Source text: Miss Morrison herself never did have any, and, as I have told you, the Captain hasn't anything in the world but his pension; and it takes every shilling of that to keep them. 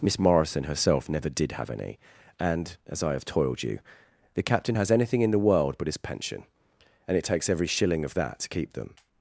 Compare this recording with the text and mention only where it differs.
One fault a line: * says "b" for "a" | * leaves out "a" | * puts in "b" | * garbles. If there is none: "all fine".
* says "toiled" for "told"
* says "has" for "hasn't"